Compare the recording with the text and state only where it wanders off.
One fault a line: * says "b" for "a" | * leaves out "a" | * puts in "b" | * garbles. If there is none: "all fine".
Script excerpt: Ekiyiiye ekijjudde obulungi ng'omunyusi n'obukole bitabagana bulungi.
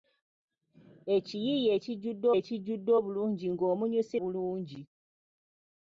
* puts in "ekijjudde"
* leaves out "n'obukole bitabagana"